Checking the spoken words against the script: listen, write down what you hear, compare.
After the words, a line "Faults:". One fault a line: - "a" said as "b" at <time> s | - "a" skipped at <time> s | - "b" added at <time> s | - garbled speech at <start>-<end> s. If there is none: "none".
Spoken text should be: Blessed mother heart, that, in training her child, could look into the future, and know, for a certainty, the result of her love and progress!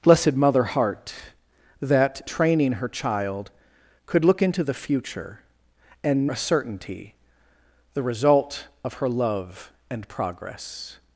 Blessed mother heart, that, training her child, could look into the future, and a certainty, the result of her love and progress!
Faults:
- "in" skipped at 2.2 s
- "know for" skipped at 6.3 s